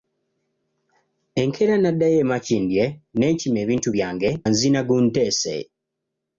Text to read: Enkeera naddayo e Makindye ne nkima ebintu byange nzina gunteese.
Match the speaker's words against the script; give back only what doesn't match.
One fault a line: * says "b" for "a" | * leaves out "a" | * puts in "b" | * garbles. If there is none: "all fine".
all fine